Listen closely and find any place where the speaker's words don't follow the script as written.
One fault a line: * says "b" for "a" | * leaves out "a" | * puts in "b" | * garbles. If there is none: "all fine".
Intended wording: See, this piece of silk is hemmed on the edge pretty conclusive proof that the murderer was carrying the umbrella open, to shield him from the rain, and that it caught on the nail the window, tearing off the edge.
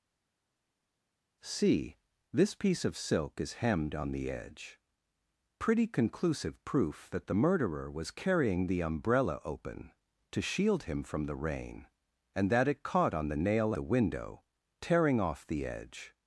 all fine